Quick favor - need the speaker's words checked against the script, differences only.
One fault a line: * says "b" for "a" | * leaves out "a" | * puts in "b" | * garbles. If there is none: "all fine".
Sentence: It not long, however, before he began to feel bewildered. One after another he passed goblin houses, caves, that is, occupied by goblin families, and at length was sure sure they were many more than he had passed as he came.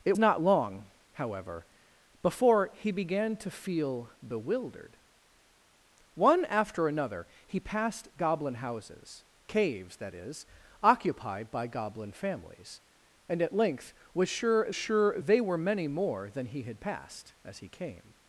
all fine